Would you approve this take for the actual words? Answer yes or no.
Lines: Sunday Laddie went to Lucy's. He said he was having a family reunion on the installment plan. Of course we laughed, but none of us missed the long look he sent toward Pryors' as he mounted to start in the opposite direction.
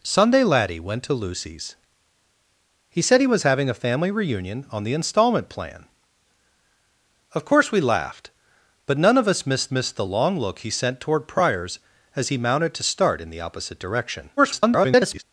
no